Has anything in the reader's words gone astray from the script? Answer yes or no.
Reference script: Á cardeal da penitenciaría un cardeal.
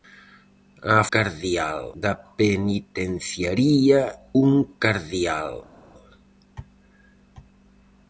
no